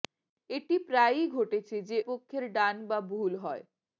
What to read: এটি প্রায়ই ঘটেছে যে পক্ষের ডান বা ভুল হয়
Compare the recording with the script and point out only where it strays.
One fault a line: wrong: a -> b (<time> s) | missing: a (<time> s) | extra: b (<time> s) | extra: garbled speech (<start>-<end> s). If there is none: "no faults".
no faults